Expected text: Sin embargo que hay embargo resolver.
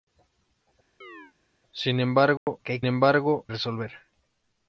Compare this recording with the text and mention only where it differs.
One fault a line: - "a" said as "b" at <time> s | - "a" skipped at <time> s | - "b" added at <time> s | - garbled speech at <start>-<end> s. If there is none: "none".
none